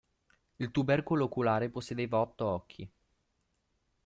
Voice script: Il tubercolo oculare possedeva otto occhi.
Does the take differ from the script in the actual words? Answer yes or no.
no